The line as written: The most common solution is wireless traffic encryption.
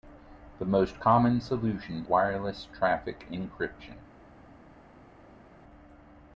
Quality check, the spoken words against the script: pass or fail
fail